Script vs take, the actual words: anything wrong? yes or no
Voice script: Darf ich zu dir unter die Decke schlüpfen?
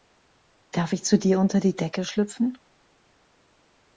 no